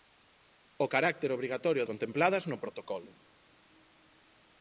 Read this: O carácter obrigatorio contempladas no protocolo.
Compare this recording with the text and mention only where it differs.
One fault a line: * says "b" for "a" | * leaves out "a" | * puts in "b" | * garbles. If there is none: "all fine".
all fine